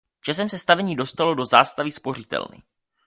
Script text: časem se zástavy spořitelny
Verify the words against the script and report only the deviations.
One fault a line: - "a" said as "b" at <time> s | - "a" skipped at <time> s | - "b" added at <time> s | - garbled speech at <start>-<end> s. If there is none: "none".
- "stavení dostalo do" added at 0.6 s